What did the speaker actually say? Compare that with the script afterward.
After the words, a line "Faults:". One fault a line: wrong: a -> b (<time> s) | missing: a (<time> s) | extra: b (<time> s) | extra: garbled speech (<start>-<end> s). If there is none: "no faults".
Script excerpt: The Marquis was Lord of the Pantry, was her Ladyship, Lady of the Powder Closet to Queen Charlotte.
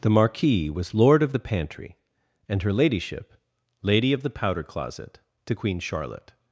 The Marquis was Lord of the Pantry, and her Ladyship, Lady of the Powder Closet to Queen Charlotte.
Faults:
wrong: was -> and (2.5 s)